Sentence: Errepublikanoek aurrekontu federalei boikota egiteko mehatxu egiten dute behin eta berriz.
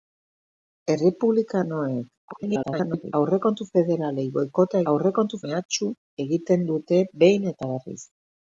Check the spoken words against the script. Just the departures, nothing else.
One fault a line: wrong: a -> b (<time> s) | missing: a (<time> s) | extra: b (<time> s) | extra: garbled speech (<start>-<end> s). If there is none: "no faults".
extra: garbled speech (2.3-3.1 s)
wrong: egiteko -> aurrekontu (4.9 s)